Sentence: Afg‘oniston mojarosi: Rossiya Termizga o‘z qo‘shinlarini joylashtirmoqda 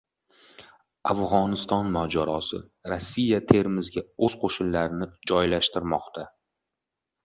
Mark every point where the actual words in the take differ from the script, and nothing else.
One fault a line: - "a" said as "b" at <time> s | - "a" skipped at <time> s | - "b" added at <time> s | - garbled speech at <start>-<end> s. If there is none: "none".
none